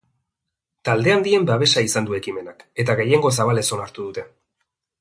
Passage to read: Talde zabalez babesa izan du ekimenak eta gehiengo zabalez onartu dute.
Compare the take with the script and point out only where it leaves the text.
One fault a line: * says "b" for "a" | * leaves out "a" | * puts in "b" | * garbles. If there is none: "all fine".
* says "handien" for "zabalez"